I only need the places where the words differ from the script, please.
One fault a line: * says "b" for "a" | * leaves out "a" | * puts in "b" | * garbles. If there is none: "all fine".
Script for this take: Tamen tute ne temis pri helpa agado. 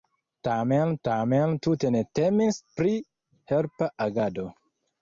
* puts in "tamen"